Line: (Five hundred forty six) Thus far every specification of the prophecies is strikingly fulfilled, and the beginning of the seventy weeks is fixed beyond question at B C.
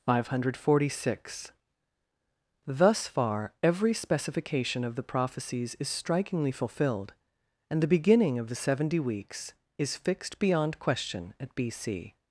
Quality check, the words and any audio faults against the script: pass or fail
pass